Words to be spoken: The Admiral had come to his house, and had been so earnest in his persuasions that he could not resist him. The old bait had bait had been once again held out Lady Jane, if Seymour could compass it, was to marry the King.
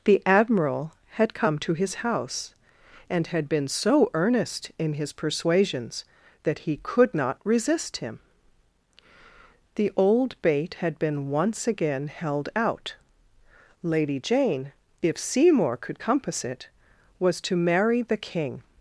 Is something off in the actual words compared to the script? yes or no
yes